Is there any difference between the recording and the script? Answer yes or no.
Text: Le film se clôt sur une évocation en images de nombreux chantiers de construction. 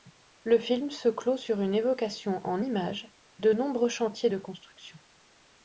no